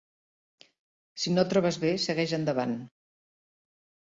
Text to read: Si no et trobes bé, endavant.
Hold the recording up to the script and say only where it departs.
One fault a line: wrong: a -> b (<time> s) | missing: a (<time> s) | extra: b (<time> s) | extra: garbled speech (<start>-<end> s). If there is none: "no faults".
extra: segueix (2.1 s)